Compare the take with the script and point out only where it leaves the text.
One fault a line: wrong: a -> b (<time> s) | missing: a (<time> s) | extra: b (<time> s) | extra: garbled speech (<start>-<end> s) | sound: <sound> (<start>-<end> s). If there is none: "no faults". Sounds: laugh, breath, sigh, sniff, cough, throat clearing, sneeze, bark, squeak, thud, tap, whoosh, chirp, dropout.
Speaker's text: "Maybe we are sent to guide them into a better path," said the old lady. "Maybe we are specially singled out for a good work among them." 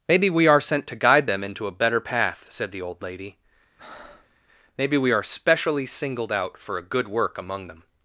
sound: breath (3.8-4.4 s)